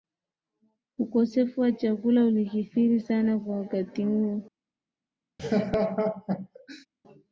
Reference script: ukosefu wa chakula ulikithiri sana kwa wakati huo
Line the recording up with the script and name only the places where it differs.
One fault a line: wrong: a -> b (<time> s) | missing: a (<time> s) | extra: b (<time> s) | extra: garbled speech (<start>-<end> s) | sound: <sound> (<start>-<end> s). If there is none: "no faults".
sound: laugh (5.4-6.9 s)